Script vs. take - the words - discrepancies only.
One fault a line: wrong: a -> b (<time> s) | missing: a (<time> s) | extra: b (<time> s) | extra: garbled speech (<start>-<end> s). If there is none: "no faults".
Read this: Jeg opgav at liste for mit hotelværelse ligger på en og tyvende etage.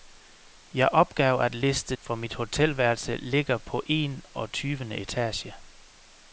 no faults